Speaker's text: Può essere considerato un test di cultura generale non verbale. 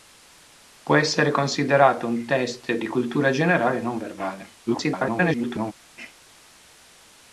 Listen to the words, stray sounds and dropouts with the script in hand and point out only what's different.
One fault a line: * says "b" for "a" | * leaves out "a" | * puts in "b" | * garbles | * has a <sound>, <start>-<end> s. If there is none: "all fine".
* garbles